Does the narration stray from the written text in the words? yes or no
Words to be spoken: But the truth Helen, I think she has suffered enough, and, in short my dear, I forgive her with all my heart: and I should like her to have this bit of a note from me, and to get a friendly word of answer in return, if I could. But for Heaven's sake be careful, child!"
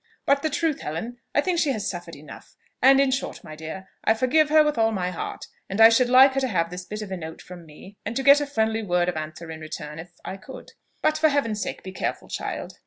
no